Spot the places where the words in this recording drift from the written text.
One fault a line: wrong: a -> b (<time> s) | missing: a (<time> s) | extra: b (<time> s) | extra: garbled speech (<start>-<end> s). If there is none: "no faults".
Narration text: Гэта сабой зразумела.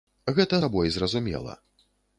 no faults